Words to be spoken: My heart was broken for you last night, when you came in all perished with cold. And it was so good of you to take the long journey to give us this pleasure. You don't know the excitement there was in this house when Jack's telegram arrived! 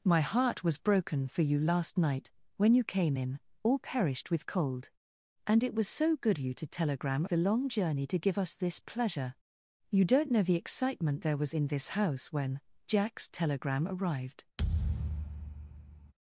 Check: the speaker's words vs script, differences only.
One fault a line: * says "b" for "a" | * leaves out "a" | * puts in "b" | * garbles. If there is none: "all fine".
* leaves out "of"
* says "telegram" for "take"